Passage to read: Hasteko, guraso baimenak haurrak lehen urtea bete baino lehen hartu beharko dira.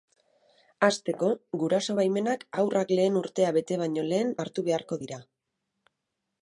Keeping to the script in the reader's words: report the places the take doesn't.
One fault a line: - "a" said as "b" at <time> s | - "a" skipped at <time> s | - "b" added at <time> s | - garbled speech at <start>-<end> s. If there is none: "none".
none